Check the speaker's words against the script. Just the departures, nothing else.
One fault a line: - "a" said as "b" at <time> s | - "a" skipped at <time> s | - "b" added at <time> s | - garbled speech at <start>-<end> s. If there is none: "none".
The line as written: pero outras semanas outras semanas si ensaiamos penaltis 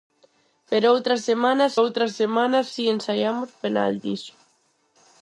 none